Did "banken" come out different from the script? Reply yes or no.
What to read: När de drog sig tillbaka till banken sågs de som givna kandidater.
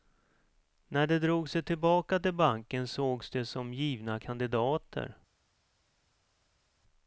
no